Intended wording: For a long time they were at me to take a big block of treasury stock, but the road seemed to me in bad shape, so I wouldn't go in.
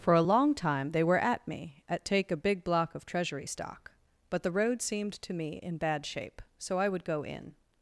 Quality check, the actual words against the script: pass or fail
fail